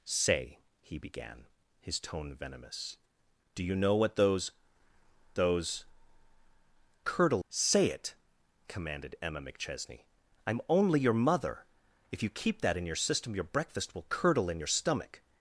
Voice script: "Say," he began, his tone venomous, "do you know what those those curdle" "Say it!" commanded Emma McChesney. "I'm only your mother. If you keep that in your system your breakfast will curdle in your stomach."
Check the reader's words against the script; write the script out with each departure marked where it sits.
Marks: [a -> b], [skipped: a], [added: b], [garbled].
"Say," he began, his tone venomous, "do you know what those those curdle" "Say it!" commanded Emma McChesney. "I'm only your mother. If you keep that in your system your breakfast will curdle in your stomach."